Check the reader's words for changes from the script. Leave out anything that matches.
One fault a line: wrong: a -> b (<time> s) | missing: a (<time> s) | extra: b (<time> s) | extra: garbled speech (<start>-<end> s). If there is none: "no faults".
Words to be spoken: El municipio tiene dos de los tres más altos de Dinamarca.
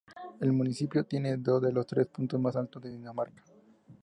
extra: puntos (2.1 s)